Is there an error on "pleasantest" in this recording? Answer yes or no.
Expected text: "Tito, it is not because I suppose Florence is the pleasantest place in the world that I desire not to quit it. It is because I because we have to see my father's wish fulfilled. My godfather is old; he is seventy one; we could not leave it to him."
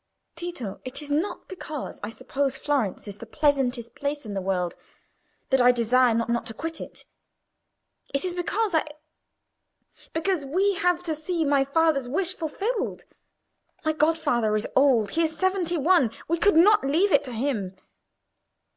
no